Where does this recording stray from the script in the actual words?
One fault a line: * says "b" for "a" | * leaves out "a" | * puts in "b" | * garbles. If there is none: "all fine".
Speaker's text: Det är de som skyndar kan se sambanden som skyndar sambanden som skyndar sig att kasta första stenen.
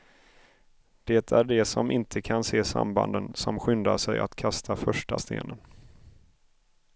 * says "inte" for "skyndar"
* leaves out "sambanden som skyndar"